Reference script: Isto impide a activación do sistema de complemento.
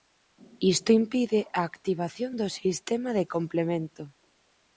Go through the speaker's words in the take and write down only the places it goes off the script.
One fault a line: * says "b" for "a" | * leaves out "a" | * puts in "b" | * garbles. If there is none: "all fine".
all fine